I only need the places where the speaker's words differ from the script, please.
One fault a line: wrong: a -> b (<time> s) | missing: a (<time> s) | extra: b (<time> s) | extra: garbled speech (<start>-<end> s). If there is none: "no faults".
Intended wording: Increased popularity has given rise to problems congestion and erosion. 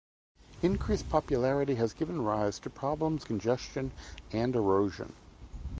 no faults